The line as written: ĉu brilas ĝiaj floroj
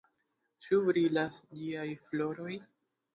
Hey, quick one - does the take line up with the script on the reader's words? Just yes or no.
yes